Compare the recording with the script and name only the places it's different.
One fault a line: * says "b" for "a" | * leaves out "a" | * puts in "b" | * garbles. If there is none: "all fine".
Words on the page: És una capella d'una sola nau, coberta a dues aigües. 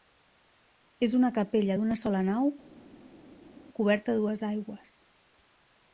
all fine